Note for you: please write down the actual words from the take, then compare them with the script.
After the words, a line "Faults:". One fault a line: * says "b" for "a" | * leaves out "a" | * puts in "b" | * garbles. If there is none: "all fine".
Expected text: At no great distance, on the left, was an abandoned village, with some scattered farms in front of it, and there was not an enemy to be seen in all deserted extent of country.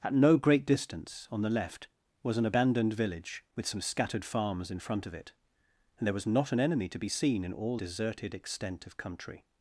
At no great distance, on the left, was an abandoned village, with some scattered farms in front of it, and there was not an enemy to be seen in all deserted extent of country.
Faults:
all fine